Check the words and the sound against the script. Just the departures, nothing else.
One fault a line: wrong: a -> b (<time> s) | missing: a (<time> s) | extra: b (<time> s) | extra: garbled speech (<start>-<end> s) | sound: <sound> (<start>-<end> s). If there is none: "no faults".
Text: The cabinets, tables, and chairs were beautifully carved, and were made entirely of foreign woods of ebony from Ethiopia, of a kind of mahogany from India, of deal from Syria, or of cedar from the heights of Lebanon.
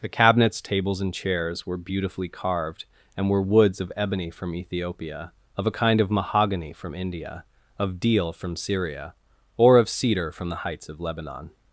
missing: made entirely of foreign (3.4 s)